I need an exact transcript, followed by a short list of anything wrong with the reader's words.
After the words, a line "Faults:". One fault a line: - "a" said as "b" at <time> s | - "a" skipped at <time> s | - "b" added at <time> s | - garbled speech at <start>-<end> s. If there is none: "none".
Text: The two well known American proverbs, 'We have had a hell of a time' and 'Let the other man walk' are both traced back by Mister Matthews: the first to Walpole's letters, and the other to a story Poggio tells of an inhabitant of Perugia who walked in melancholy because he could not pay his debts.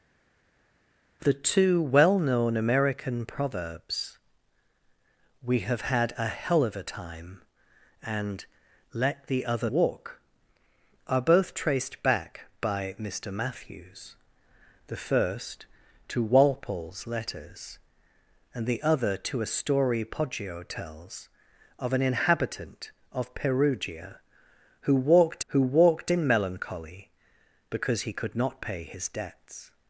The two well known American proverbs, 'We have had a hell of a time' and 'Let the other walk' are both traced back by Mister Matthews: the first to Walpole's letters, and the other to a story Poggio tells of an inhabitant of Perugia who walked who walked in melancholy because he could not pay his debts.
Faults:
- "man" skipped at 9.7 s
- "who walked" added at 25.5 s